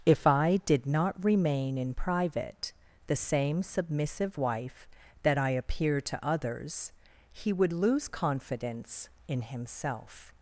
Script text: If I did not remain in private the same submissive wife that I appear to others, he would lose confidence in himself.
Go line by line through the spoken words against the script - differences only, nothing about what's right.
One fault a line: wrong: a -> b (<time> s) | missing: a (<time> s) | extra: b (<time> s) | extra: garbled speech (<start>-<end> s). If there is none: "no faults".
no faults